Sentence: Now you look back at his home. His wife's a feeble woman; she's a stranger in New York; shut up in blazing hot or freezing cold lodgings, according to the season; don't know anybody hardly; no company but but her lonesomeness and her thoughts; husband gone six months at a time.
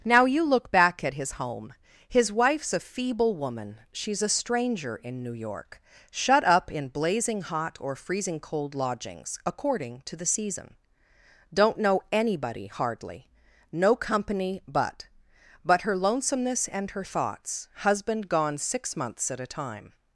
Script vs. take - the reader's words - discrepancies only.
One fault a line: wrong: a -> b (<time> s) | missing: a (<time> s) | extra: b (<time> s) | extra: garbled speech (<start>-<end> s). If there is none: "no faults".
no faults